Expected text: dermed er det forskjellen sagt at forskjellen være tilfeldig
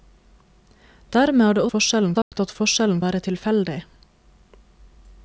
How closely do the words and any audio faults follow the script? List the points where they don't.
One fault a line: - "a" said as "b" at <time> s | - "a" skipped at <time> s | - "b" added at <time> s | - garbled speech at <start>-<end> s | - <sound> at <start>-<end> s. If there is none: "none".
- dropout at 2.2-2.3 s